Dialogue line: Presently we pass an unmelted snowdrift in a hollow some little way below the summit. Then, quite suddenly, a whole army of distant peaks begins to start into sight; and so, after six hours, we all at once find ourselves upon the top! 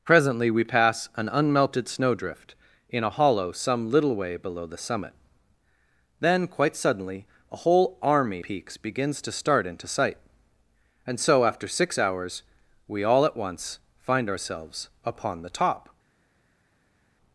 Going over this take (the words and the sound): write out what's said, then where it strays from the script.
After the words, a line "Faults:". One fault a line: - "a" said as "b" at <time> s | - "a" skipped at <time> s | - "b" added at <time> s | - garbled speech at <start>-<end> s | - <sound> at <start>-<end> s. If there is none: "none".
Presently we pass an unmelted snowdrift in a hollow some little way below the summit. Then, quite suddenly, a whole army peaks begins to start into sight; and so, after six hours, we all at once find ourselves upon the top!
Faults:
- "of distant" skipped at 8.4 s